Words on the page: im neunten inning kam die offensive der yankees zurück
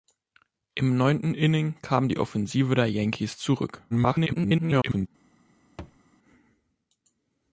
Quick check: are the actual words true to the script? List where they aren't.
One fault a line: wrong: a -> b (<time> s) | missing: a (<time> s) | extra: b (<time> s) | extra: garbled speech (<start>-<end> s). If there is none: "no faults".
extra: garbled speech (3.9-5.1 s)